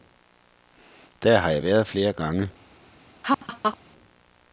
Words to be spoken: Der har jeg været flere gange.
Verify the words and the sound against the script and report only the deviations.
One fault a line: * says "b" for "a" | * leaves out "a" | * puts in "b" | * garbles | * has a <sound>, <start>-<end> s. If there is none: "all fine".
* has a laugh, 3.2-3.8 s